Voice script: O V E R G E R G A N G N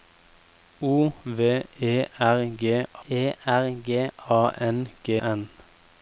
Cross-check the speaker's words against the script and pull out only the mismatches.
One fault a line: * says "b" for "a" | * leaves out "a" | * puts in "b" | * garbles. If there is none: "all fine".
all fine